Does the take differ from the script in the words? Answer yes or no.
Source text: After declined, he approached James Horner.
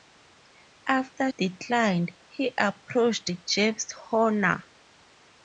no